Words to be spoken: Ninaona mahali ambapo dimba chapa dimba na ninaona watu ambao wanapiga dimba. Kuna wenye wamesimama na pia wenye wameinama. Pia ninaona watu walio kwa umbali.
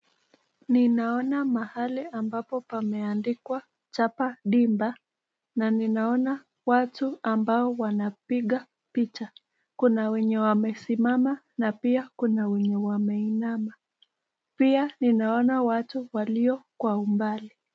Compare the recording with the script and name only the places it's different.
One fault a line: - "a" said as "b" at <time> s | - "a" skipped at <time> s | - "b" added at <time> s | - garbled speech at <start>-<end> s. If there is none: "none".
- "dimba" said as "pameandikwa" at 2.6 s
- "dimba" said as "picha" at 8.9 s
- "kuna" added at 12.2 s